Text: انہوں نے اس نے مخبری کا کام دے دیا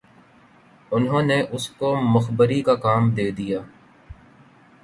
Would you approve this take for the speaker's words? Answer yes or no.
no